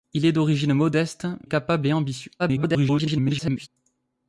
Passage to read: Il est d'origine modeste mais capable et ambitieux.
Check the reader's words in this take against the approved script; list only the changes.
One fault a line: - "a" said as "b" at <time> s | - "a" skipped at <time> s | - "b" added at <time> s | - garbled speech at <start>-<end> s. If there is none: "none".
- "mais" skipped at 1.3 s
- garbled speech at 2.4-3.7 s